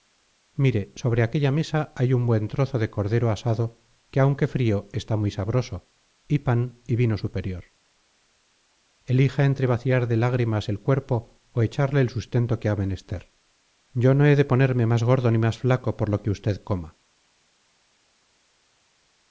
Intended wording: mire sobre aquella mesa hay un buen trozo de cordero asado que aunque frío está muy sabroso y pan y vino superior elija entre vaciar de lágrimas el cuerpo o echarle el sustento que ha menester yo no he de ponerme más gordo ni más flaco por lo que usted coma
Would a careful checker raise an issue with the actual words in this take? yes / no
no